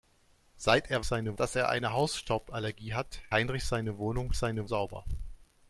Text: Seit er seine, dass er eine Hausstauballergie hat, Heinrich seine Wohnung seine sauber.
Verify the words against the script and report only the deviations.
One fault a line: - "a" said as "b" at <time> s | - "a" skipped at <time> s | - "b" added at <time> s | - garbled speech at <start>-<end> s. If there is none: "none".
none